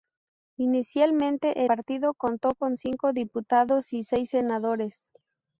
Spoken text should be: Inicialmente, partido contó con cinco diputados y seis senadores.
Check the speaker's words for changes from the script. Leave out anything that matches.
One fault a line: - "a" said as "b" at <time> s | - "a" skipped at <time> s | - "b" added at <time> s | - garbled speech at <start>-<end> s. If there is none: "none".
none